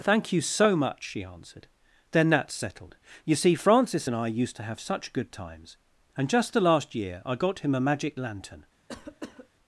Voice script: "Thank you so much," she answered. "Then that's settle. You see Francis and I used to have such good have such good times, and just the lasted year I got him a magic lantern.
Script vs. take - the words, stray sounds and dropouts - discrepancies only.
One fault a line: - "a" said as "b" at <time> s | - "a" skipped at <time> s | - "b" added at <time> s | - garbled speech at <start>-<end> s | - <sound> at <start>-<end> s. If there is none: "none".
- "settle" said as "settled" at 2.5 s
- "have such good" skipped at 5.3 s
- "lasted" said as "last" at 6.6 s
- cough at 8.9-9.5 s